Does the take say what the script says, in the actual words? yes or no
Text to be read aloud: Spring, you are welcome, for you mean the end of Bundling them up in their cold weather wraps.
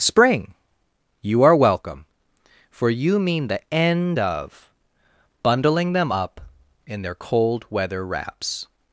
yes